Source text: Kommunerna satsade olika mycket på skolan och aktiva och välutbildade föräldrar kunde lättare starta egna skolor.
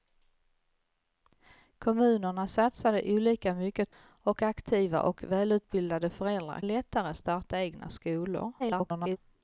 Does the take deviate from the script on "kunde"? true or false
true